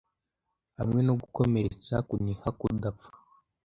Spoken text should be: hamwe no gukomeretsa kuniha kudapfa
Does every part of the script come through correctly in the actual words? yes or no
yes